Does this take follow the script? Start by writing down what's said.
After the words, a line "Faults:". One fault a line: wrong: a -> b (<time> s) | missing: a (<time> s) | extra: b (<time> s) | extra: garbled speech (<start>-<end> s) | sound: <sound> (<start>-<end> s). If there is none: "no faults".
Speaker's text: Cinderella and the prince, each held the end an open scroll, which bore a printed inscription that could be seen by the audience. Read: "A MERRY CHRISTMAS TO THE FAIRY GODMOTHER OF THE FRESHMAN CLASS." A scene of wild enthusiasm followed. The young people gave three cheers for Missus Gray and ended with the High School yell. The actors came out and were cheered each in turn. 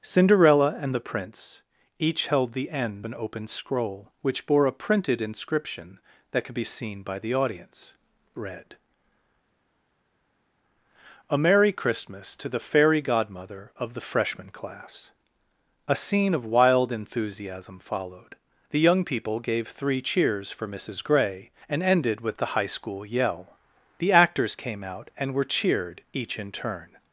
Cinderella and the prince, each held the end an open scroll, which bore a printed inscription that could be seen by the audience. Read: "A MERRY CHRISTMAS TO THE FAIRY GODMOTHER OF THE FRESHMAN CLASS." A scene of wild enthusiasm followed. The young people gave three cheers for Missus Gray and ended with the High School yell. The actors came out and were cheered each in turn.
Faults:
no faults